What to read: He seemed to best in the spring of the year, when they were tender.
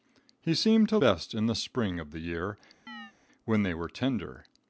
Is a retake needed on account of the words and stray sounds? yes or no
yes